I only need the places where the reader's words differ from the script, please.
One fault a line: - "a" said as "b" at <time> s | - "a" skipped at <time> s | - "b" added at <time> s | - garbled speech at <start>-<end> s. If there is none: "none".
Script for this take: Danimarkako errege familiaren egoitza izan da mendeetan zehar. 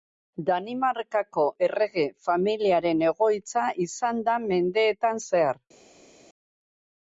none